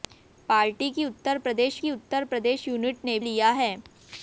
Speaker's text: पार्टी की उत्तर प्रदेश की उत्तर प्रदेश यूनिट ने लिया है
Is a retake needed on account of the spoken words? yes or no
no